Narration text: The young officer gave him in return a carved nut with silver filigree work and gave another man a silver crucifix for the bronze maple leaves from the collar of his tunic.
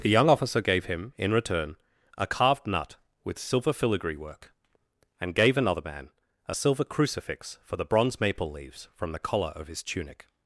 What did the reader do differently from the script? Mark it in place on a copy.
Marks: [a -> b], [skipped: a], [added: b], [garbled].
The young officer gave him in return a carved nut with silver filigree work and gave another man a silver crucifix for the bronze maple leaves from the collar of his tunic.